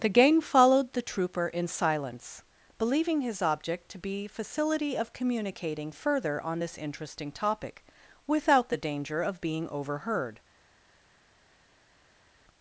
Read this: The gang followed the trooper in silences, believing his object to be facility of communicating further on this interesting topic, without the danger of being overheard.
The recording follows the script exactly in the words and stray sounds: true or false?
false